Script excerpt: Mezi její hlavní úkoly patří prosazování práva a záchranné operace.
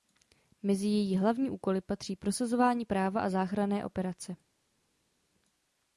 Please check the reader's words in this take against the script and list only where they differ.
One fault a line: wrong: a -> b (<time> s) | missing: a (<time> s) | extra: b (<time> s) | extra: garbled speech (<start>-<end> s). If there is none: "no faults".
no faults